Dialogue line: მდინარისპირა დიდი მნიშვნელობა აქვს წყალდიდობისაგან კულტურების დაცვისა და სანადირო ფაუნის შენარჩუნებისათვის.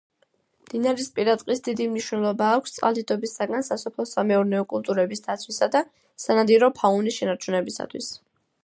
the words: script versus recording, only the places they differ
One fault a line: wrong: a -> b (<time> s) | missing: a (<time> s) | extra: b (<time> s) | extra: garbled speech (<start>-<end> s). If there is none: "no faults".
extra: ტყის (1.4 s)
extra: სასოფლო სამეურნეო (3.7 s)